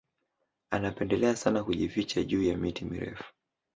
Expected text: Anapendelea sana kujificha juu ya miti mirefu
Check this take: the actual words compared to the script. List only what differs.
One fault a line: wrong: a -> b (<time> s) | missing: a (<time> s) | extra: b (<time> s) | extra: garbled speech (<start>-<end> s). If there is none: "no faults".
no faults